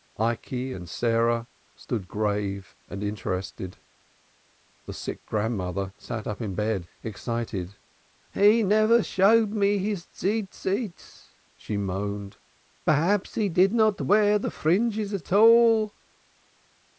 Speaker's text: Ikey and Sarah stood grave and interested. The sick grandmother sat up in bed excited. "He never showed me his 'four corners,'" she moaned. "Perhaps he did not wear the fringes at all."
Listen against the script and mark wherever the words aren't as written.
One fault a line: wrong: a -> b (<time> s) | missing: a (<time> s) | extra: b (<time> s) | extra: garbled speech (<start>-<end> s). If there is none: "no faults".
no faults